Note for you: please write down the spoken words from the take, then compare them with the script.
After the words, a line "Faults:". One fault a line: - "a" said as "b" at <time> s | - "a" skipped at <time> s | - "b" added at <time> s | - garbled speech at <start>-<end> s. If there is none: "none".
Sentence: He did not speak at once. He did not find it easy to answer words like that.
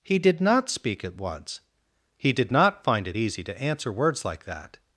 He did not speak at once. He did not find it easy to answer words like that.
Faults:
none